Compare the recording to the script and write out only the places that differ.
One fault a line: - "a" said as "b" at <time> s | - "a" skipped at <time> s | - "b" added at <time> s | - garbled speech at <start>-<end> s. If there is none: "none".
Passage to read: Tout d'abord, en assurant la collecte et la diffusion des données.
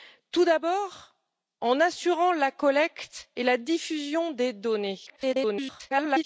- garbled speech at 5.1-6.2 s